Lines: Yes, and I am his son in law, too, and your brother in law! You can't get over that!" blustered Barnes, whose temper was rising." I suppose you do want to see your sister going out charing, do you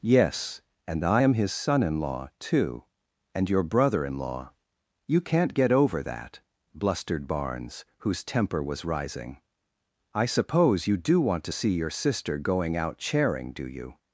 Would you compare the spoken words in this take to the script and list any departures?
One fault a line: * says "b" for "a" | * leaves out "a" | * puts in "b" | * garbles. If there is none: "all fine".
all fine